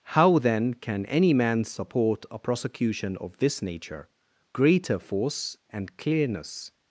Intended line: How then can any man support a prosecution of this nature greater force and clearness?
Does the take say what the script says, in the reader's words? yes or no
yes